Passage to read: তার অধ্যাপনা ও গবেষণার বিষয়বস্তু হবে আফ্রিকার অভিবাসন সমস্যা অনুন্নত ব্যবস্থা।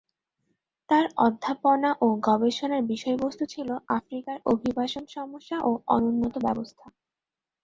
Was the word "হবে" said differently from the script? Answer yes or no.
yes